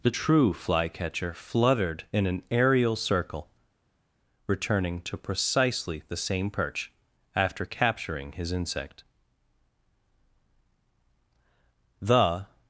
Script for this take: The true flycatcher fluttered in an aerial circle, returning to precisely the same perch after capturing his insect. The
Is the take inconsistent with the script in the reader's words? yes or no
no